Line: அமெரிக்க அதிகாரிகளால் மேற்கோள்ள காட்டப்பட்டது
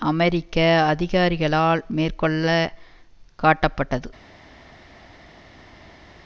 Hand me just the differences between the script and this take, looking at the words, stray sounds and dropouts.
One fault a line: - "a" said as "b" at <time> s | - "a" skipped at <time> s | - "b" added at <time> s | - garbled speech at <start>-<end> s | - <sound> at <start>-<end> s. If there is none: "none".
none